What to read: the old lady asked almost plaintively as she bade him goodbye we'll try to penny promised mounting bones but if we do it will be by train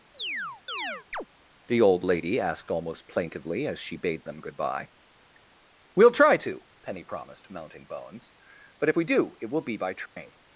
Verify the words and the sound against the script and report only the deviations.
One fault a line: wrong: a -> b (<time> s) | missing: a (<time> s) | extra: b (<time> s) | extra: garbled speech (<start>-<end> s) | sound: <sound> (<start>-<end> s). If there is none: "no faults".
sound: chirp (0.1-1.3 s)
wrong: him -> them (4.3 s)
sound: dropout (10.1-10.2 s)